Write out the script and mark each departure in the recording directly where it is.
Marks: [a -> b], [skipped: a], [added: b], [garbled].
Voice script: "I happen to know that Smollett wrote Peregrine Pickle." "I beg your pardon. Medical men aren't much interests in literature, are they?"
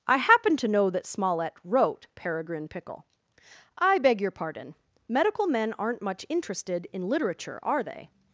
"I happen to know that Smollett wrote Peregrine Pickle." "I beg your pardon. Medical men aren't much [interests -> interested] in literature, are they?"